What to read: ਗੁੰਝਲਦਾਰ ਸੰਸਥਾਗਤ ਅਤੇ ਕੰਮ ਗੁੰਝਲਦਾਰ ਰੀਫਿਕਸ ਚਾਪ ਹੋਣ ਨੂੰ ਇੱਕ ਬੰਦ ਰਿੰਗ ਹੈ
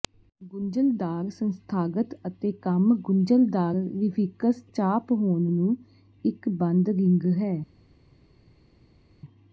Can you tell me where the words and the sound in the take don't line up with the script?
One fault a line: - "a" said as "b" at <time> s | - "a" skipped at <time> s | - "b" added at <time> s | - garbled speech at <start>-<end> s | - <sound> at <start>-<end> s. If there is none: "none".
none